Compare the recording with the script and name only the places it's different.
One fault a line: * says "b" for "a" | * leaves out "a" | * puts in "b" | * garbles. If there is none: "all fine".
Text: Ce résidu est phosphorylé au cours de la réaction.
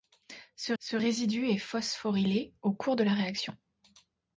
* puts in "ce"